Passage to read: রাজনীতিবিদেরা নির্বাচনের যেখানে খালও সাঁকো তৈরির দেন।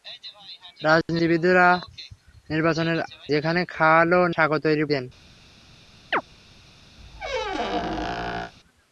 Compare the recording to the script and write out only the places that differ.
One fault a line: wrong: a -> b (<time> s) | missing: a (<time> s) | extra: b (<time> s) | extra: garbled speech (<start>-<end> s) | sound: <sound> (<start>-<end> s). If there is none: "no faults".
sound: chirp (6.1-6.2 s)
sound: squeak (7.0-8.5 s)